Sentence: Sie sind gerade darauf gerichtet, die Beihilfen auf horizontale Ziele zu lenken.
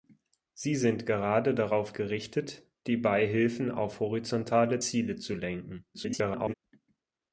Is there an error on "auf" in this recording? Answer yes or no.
no